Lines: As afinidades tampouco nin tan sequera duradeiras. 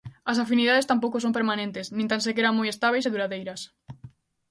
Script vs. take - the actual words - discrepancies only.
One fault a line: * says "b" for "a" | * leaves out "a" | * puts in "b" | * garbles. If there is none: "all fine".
* puts in "son permanentes"
* puts in "moi estábeis e"